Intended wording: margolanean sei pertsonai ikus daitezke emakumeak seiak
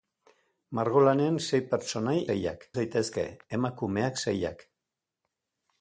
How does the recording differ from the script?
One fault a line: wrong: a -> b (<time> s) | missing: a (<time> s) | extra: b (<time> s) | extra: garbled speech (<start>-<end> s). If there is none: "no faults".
wrong: ikus -> seiak (2.3 s)